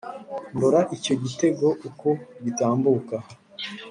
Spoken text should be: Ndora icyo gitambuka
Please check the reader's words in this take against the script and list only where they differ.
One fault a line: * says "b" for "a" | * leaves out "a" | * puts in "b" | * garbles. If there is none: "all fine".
* puts in "gitego uko"